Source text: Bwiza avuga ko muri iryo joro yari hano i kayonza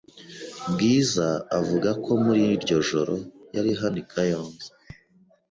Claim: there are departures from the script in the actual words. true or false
false